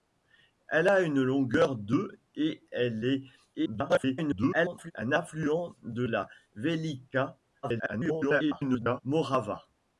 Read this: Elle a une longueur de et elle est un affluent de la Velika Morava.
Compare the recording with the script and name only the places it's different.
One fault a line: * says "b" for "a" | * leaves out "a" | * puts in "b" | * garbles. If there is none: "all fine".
* garbles
* garbles